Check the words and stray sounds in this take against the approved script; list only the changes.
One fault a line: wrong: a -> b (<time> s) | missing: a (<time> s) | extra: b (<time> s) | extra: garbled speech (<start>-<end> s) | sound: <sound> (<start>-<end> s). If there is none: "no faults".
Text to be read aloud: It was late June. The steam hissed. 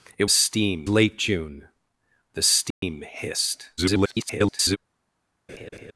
wrong: was -> steam (0.3 s)
sound: dropout (2.7-2.8 s)
extra: garbled speech (3.8-4.8 s)
sound: laugh (5.5-5.9 s)